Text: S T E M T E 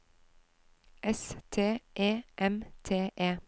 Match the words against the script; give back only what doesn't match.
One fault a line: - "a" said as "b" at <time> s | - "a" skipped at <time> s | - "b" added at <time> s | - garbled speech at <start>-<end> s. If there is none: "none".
none